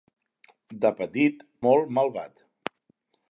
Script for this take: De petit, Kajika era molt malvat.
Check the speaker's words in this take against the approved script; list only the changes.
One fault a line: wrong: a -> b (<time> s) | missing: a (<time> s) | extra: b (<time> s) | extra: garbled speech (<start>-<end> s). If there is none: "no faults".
missing: Kajika era (1.4 s)